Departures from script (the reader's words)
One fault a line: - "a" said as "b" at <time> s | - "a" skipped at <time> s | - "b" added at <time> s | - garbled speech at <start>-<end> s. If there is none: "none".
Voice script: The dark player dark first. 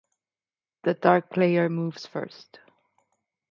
- "dark" said as "moves" at 1.7 s